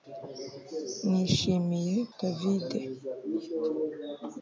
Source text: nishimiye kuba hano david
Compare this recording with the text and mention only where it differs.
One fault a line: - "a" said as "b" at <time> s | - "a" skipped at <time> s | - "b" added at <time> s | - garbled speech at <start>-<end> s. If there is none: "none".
- "kuba hano" skipped at 1.9 s